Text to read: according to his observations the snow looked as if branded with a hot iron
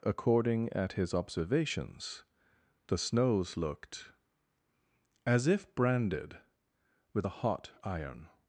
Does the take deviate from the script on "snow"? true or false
true